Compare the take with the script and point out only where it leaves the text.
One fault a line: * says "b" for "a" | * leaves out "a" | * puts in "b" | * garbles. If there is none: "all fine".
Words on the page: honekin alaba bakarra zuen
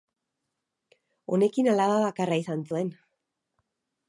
* puts in "izan"